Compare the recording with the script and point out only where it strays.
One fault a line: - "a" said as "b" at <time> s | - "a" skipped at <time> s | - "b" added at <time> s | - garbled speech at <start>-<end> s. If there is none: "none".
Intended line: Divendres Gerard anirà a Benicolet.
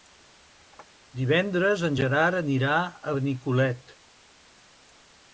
- "en" added at 1.9 s